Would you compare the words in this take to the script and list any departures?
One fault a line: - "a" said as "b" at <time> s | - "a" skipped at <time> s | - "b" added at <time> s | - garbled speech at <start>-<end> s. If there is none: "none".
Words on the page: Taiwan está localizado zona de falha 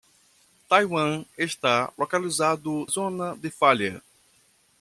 none